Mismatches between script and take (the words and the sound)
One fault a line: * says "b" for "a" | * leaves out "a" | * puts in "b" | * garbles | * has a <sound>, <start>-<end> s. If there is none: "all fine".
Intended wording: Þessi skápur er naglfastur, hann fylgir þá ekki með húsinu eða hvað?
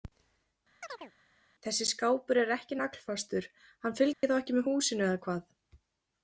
* has a chirp, 0.8-1.1 s
* puts in "ekki"
* has a dropout, 4.1-4.2 s